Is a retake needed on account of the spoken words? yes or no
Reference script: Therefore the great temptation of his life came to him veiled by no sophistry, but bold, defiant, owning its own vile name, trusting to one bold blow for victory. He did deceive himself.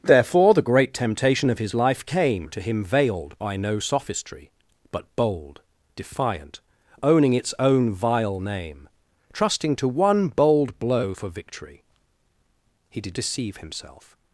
no